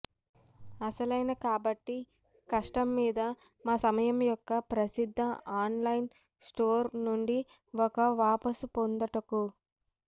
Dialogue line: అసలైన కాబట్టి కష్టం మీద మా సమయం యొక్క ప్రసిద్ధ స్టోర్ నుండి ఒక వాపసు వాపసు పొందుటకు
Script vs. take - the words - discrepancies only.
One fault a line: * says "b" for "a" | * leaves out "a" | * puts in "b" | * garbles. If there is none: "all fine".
* puts in "ఆన్లైన్"
* leaves out "వాపసు"